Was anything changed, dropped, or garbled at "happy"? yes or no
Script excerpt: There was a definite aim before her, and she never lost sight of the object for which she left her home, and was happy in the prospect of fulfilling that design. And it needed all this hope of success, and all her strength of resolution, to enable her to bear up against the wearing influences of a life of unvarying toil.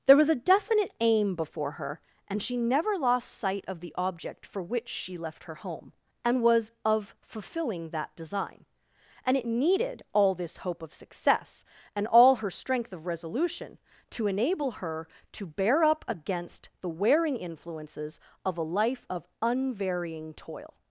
yes